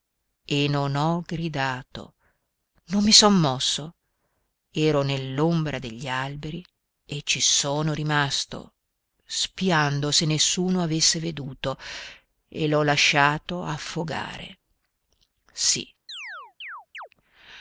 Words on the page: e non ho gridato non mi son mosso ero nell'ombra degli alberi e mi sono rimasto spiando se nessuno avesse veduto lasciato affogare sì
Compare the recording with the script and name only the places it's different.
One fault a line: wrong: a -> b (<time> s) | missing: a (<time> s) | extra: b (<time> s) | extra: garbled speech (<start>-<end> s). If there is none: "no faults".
wrong: mi -> ci (7.2 s)
extra: e l'ho (12.5 s)